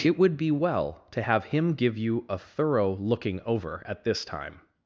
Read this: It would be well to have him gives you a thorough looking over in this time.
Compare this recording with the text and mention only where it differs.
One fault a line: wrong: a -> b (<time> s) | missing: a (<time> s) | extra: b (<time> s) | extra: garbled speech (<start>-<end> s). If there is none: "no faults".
wrong: gives -> give (1.7 s)
wrong: in -> at (3.8 s)